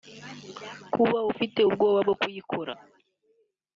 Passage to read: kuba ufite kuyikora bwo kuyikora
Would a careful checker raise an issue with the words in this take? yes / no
yes